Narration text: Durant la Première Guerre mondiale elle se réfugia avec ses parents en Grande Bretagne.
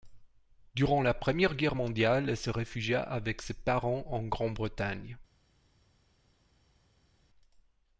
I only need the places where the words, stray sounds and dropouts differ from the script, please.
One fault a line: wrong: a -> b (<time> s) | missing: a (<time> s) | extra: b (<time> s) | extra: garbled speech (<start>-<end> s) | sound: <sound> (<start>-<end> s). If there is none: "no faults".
no faults